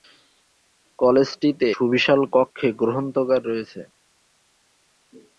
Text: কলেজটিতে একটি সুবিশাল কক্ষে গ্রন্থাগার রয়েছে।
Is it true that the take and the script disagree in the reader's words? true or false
true